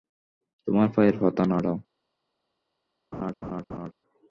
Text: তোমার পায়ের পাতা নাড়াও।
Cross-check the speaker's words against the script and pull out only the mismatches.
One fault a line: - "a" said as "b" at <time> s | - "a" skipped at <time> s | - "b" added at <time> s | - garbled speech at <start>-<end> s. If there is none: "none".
none